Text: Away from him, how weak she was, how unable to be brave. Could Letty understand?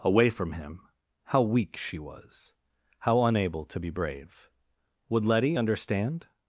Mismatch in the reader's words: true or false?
true